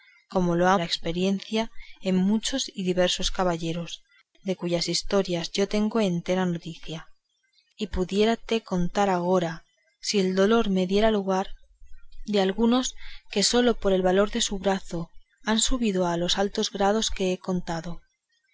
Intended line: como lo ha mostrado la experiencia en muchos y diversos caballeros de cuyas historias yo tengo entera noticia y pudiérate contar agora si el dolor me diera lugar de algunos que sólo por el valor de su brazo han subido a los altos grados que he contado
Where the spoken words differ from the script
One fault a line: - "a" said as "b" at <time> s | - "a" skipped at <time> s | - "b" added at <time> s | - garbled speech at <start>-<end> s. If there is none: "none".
- "mostrado" skipped at 0.8 s